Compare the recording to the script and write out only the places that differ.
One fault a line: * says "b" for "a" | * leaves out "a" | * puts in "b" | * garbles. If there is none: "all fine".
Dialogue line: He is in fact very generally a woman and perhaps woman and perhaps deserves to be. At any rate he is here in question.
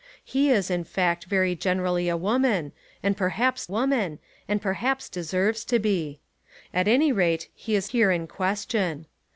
all fine